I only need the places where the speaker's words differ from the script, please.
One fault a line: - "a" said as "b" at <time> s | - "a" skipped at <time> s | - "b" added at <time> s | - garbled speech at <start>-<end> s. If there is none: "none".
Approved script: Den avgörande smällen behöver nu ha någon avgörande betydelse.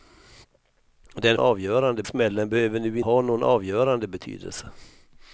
none